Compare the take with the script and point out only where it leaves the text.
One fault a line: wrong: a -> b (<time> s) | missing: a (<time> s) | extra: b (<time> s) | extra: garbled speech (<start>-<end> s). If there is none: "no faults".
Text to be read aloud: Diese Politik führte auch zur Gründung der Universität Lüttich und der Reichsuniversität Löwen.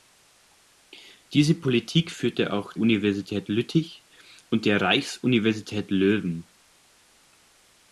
missing: zur Gründung der (2.7 s)